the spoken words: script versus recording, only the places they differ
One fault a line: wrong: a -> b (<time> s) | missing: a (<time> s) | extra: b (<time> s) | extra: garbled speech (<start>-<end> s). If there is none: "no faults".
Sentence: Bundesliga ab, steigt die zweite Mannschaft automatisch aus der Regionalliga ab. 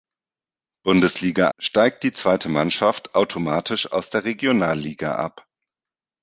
missing: ab (1.5 s)